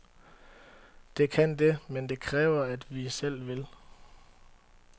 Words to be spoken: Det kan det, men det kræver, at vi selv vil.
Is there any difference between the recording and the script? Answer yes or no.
no